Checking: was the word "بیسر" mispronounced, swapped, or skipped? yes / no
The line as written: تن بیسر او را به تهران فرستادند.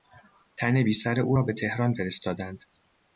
no